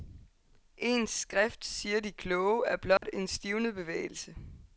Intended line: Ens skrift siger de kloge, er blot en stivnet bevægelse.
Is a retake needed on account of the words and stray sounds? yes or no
yes